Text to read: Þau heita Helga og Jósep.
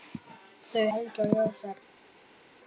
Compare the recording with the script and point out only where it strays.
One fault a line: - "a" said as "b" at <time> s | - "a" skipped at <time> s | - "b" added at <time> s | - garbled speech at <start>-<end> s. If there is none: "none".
- "heita" skipped at 0.9 s